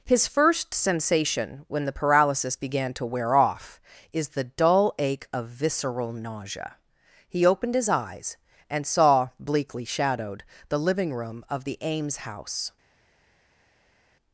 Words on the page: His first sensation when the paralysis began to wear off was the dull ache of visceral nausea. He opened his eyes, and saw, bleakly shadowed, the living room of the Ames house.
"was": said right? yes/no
no